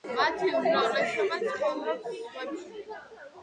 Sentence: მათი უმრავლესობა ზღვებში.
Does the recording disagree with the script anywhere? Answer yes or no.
yes